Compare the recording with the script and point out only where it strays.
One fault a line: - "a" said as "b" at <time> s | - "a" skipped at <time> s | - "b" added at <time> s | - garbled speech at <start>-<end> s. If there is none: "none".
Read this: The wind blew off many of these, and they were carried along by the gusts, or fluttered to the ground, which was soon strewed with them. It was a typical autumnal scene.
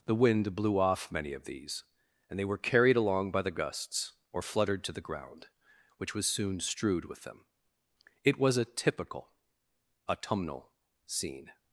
none